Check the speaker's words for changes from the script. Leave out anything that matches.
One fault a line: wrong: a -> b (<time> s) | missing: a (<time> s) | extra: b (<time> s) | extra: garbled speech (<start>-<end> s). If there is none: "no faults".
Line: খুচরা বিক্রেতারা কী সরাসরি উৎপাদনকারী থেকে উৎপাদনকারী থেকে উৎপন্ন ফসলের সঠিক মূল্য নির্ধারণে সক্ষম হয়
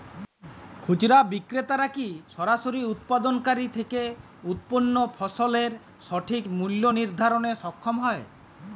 missing: উৎপাদনকারী থেকে (4.0 s)